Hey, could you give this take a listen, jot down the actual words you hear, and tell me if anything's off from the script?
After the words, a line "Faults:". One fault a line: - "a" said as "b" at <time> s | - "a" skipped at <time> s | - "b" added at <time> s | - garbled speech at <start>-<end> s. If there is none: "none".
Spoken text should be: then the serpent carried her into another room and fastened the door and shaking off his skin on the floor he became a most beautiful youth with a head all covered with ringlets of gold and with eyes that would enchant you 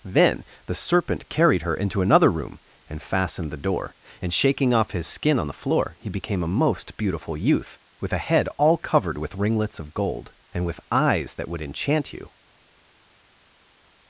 then the serpent carried her into another room and fastened the door and shaking off his skin on the floor he became a most beautiful youth with a head all covered with ringlets of gold and with eyes that would enchant you
Faults:
none